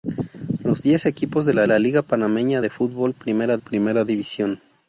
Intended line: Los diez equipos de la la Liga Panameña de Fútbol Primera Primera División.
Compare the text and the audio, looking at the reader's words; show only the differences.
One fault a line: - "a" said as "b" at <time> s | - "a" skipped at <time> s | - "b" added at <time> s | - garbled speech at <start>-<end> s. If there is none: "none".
none